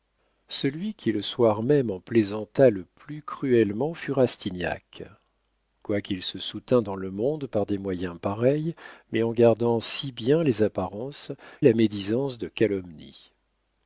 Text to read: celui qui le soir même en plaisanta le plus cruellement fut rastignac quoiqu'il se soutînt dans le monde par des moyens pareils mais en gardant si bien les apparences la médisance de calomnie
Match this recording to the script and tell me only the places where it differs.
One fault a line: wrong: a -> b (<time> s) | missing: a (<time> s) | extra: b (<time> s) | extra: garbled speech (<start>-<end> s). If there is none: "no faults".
no faults